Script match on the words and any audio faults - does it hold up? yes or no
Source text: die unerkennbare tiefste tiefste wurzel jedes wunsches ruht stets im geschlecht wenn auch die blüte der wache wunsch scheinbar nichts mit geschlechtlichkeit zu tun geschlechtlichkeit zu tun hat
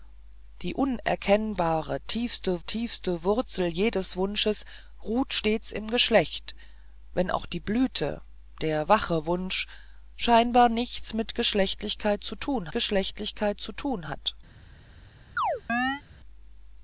no